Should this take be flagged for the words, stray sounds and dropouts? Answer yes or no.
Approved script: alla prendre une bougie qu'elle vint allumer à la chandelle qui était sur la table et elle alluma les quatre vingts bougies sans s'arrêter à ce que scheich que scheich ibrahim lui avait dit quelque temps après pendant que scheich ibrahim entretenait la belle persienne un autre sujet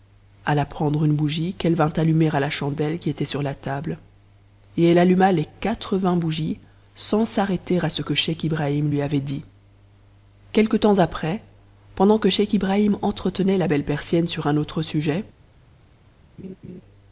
yes